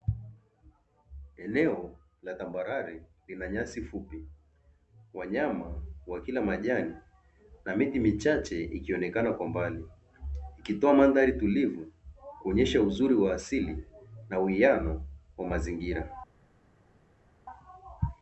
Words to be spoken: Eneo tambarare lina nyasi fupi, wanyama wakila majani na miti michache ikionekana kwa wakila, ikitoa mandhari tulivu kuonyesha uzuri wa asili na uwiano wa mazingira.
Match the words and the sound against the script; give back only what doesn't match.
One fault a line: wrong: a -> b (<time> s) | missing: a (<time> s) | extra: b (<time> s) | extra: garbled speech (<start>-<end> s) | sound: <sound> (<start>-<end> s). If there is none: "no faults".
extra: la (2.2 s)
wrong: wakila -> mbali (9.5 s)